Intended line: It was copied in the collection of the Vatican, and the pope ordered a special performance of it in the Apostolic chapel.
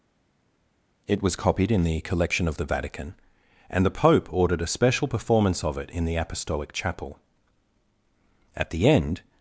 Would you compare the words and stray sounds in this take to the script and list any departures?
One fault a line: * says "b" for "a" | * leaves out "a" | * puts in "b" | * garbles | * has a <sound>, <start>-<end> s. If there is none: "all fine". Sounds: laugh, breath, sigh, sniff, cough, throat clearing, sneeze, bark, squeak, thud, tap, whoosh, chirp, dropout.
* puts in "At the end"